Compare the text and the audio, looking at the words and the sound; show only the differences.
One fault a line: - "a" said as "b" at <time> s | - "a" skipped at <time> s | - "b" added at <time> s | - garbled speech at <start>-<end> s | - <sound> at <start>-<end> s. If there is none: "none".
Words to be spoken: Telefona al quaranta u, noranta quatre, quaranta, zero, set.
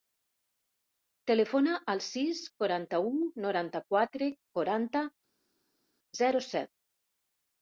- "sis" added at 2.0 s